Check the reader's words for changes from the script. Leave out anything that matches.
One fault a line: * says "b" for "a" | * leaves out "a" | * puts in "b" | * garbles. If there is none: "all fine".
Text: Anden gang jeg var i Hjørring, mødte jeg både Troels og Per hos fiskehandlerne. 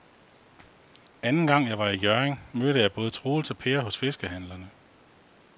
all fine